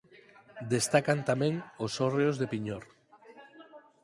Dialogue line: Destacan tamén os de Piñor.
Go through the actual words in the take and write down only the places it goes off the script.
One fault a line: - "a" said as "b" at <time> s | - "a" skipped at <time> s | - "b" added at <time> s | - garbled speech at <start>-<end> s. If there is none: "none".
- "hórreos" added at 2.0 s